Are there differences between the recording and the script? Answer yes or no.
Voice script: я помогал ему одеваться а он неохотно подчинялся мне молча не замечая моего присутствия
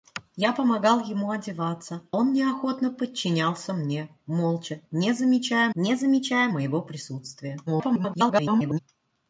yes